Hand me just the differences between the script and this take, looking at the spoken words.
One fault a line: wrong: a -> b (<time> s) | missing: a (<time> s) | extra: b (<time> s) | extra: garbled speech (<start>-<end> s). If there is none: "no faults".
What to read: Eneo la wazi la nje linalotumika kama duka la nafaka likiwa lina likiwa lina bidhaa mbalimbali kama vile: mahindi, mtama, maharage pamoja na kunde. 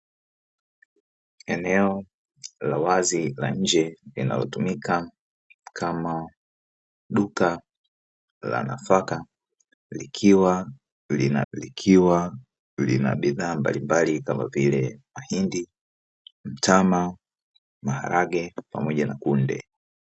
no faults